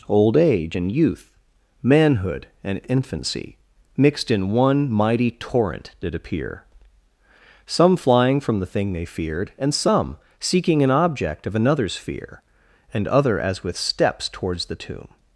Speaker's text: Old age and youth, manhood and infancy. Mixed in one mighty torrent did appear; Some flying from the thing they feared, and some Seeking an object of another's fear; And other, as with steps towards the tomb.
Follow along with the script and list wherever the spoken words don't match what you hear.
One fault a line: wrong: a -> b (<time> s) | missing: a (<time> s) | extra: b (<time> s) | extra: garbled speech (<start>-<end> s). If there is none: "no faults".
no faults